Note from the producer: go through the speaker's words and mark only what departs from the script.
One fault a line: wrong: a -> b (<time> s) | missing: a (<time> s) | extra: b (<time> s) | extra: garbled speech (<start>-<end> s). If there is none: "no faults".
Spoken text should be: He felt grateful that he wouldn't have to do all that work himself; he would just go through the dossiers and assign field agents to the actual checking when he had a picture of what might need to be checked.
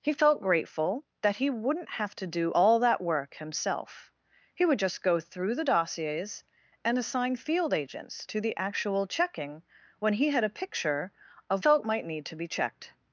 wrong: what -> felt (11.6 s)